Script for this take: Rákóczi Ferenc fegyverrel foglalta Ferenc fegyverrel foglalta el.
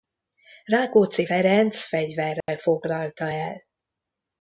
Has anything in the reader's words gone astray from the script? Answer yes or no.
yes